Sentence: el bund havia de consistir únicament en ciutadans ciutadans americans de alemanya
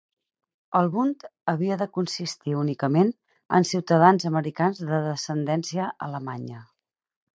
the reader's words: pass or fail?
fail